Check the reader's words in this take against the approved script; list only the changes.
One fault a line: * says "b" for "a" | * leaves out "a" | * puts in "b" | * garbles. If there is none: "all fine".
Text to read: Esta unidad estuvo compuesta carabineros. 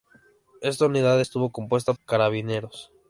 all fine